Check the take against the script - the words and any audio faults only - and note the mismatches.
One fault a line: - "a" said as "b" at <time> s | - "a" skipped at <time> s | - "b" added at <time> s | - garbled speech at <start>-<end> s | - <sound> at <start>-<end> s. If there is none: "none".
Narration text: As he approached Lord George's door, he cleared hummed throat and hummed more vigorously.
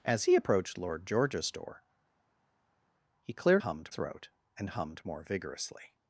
none